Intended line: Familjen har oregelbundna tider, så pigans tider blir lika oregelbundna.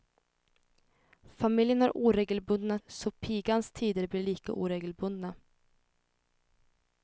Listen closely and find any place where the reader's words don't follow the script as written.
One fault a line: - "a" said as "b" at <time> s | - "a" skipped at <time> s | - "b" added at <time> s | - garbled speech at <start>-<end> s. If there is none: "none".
- "tider" skipped at 2.8 s